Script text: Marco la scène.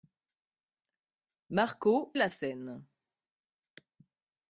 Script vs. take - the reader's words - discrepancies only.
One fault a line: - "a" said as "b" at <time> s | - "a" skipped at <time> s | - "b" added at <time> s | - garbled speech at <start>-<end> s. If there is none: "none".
none